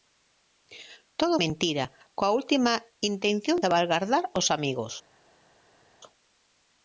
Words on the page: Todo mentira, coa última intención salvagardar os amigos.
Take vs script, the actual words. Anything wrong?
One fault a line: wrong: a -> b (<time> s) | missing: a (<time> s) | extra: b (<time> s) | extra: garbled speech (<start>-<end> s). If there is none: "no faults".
no faults